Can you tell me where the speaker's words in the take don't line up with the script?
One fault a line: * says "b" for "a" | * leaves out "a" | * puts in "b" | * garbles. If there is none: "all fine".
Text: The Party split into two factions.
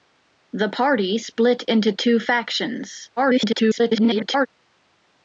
* garbles